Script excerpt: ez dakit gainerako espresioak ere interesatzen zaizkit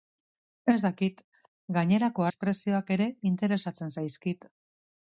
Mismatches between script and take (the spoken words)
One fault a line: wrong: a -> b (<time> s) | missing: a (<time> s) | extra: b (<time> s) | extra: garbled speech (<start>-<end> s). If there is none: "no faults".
no faults